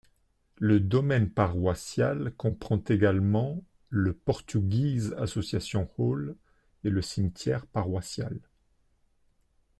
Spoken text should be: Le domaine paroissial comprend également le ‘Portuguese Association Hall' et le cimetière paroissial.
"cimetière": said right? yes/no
yes